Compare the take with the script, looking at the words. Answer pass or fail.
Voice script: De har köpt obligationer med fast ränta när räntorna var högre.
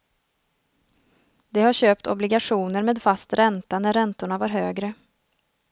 pass